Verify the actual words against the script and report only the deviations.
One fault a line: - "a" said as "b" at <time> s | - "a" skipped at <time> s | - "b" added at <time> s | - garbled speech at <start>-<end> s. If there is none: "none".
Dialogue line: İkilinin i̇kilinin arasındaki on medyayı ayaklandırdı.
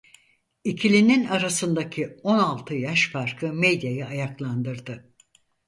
- "i̇kilinin" skipped at 1.2 s
- "altı yaş farkı" added at 2.4 s